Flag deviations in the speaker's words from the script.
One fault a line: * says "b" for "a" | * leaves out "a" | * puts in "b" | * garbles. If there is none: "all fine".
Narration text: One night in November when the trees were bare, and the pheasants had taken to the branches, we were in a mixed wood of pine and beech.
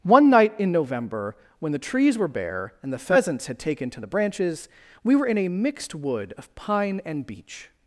all fine